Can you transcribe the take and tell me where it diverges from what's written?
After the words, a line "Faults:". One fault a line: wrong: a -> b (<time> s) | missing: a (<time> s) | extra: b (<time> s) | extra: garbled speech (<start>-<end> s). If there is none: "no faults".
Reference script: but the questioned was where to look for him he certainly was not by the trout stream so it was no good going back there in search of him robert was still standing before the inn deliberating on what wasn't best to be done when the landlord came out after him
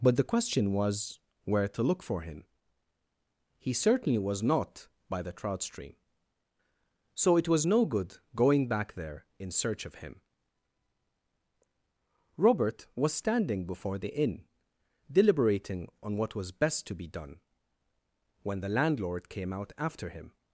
but the question was where to look for him he certainly was not by the trout stream so it was no good going back there in search of him robert was standing before the inn deliberating on what was best to be done when the landlord came out after him
Faults:
wrong: questioned -> question (0.2 s)
missing: still (13.1 s)
wrong: wasn't -> was (16.4 s)